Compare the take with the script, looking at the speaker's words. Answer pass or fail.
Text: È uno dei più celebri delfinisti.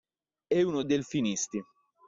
fail